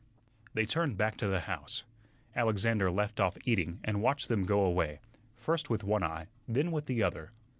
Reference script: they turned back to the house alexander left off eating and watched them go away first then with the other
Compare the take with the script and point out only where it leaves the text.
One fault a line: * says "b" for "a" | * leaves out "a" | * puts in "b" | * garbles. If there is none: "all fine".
* puts in "with one eye"